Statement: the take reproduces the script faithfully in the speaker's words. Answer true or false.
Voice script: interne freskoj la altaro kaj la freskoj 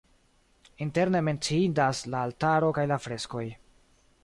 false